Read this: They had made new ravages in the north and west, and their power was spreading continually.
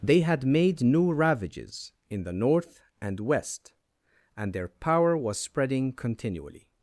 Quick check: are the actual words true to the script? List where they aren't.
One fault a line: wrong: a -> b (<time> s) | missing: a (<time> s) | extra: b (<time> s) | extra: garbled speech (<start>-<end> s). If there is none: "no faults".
no faults